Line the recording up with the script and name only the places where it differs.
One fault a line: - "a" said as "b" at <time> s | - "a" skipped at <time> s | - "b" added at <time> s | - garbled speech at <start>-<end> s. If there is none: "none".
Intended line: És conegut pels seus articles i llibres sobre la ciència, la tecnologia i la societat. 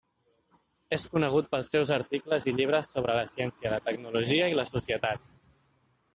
none